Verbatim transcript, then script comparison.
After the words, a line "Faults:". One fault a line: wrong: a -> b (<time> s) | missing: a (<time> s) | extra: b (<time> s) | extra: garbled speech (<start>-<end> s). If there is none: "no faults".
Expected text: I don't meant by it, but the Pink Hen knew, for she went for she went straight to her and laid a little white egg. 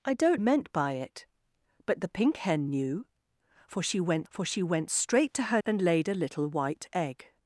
I don't meant by it, but the Pink Hen knew, for she went for she went straight to her and laid a little white egg.
Faults:
no faults